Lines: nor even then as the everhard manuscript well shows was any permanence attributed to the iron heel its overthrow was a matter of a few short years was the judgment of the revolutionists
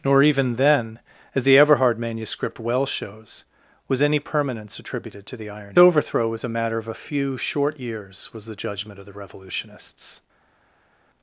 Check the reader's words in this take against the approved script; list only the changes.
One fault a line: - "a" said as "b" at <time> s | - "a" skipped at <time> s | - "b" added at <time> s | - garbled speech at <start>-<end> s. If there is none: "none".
- "heel its" skipped at 5.8 s